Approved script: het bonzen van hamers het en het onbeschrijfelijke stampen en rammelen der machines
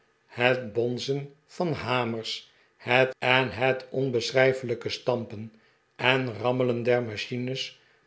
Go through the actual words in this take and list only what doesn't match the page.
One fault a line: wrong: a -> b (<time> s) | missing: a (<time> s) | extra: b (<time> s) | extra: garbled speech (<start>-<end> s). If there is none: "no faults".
no faults